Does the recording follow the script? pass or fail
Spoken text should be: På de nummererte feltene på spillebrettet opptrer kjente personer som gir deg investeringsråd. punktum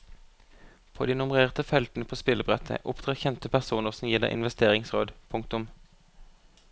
pass